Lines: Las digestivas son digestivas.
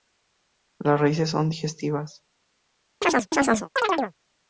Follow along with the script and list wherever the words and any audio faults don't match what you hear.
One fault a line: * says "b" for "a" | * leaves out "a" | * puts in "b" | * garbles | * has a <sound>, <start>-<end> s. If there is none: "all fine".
* says "raíces" for "digestivas"
* has a chirp, 3.0-4.1 s